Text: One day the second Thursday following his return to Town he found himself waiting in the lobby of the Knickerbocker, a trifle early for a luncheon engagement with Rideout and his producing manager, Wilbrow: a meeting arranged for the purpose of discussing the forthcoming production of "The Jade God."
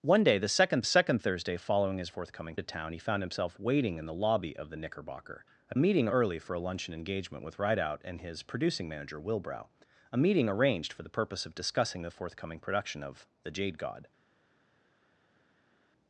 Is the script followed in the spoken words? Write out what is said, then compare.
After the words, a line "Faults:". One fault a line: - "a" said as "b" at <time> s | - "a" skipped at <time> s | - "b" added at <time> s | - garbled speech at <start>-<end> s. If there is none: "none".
One day the second second Thursday following his forthcoming to Town he found himself waiting in the lobby of the Knickerbocker, a meeting early for a luncheon engagement with Rideout and his producing manager, Wilbrow: a meeting arranged for the purpose of discussing the forthcoming production of "The Jade God."
Faults:
- "second" added at 0.8 s
- "return" said as "forthcoming" at 2.1 s
- "trifle" said as "meeting" at 5.8 s